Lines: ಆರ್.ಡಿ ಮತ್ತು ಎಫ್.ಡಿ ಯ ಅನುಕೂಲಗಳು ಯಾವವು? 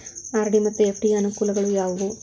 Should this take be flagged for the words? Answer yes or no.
no